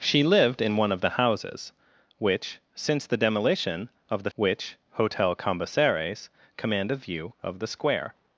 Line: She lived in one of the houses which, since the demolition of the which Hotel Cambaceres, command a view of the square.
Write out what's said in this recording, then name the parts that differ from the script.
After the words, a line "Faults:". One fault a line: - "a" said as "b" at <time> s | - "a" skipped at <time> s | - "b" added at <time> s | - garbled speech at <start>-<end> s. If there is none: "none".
She lived in one of the houses which, since the demolition of the which Hotel Cambaceres, command a view of the square.
Faults:
none